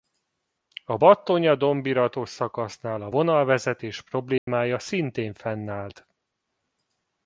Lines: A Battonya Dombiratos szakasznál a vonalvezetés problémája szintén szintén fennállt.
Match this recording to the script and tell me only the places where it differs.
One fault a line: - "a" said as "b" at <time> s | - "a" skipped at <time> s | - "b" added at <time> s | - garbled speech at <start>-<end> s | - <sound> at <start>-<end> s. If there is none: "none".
- dropout at 4.4-4.5 s
- "szintén" skipped at 5.3 s